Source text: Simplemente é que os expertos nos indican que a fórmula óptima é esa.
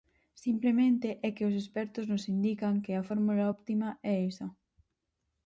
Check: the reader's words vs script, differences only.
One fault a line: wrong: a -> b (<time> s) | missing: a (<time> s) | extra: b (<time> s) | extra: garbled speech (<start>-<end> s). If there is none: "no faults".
no faults